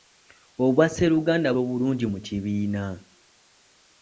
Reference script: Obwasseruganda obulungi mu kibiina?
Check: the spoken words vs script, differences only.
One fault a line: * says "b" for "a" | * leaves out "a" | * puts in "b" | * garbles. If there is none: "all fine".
all fine